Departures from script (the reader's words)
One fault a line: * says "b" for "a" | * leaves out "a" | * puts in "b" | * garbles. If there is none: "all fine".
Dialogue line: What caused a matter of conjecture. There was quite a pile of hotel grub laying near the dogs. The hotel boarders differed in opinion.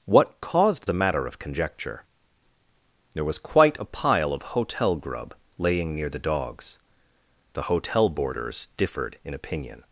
all fine